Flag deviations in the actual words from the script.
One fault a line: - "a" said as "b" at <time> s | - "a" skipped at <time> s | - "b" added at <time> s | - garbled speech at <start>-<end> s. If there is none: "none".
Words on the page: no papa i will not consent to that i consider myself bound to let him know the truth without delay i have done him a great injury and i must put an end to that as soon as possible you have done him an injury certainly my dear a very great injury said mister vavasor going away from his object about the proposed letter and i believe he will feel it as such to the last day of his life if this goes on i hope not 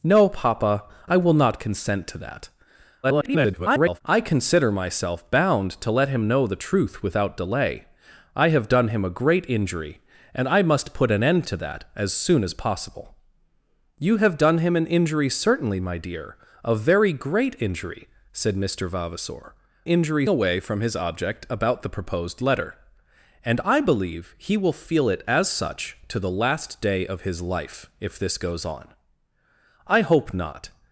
- garbled speech at 3.0-4.0 s
- "going" said as "injury" at 19.8 s